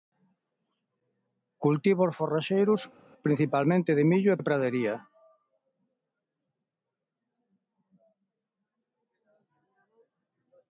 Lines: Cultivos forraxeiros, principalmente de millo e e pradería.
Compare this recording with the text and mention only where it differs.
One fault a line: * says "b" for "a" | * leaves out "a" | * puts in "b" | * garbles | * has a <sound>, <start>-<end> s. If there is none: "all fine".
all fine